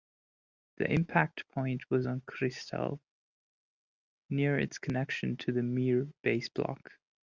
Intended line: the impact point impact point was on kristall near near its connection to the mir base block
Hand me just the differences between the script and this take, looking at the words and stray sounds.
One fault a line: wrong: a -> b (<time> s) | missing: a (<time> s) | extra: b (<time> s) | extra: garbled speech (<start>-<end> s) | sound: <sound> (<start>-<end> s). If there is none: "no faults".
missing: impact point (1.9 s)
missing: near (4.6 s)